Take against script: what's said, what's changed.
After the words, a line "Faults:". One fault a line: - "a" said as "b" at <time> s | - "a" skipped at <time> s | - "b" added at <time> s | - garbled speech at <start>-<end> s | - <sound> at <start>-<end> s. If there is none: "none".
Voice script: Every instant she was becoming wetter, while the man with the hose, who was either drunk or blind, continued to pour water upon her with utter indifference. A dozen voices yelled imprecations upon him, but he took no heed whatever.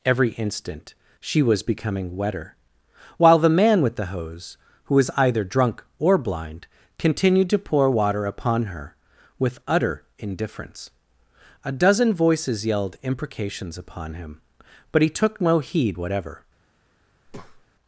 Every instant she was becoming wetter, while the man with the hose, who was either drunk or blind, continued to pour water upon her with utter indifference. A dozen voices yelled imprecations upon him, but he took no heed whatever.
Faults:
- breath at 17.3-17.7 s